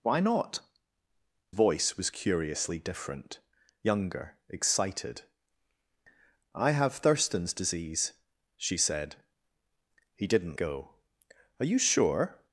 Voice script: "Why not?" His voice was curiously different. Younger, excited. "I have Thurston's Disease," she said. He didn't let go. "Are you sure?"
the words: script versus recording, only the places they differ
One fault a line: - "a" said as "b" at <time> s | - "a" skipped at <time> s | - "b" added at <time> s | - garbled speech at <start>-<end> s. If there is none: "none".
- "His" skipped at 0.6 s
- "let" skipped at 10.6 s